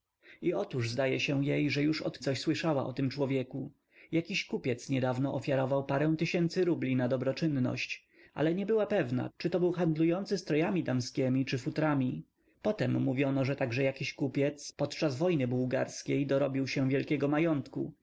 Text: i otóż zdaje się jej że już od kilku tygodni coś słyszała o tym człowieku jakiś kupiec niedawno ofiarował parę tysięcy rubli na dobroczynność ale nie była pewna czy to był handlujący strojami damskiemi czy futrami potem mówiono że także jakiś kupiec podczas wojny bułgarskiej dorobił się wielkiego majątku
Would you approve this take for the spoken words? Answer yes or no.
no